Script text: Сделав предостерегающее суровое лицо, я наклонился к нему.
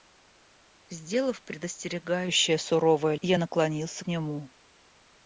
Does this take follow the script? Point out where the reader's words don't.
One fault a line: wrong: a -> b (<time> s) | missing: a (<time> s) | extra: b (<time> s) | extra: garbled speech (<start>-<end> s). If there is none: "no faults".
missing: лицо (3.1 s)
missing: к (4.0 s)